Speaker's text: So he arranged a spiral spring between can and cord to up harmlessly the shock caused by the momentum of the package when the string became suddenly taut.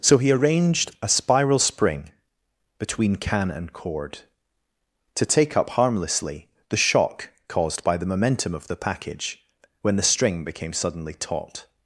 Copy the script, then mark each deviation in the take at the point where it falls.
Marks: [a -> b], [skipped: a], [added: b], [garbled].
So he arranged a spiral spring between can and cord to [added: take] up harmlessly the shock caused by the momentum of the package when the string became suddenly taut.